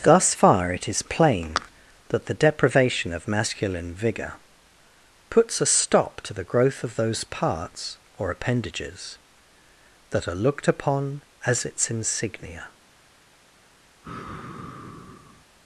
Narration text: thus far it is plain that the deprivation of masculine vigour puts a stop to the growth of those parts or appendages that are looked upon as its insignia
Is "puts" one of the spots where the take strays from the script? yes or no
no